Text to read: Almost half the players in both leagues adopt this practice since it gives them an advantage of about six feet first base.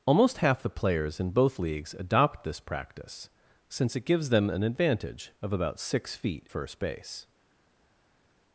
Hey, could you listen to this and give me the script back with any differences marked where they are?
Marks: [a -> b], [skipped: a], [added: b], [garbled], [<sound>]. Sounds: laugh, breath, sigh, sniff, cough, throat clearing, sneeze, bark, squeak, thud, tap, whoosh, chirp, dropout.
Almost half the players in both leagues adopt this practice since it gives them an advantage of about six feet first base.